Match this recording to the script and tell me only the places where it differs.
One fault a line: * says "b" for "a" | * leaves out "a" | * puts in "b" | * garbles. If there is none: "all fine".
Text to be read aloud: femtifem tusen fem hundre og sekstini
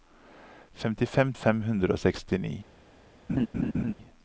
* leaves out "tusen"